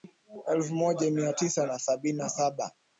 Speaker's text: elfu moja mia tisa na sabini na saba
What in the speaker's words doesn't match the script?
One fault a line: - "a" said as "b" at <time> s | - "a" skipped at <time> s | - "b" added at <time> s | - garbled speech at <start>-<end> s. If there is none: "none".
none